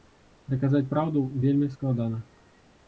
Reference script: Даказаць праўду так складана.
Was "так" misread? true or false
true